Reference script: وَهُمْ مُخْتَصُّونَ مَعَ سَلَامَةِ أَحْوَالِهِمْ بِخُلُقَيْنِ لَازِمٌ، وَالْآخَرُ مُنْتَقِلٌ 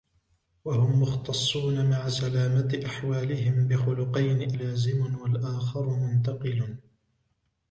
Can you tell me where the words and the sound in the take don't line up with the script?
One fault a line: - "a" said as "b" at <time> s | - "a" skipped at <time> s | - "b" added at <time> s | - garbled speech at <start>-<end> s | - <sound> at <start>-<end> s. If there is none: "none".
none